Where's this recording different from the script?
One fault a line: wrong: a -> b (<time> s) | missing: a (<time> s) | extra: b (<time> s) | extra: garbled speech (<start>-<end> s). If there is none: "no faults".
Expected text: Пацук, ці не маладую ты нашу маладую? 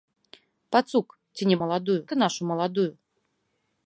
no faults